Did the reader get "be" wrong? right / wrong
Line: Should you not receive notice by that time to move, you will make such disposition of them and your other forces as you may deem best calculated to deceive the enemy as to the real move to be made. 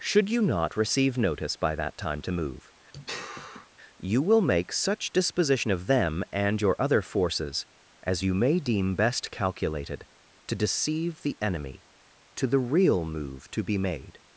right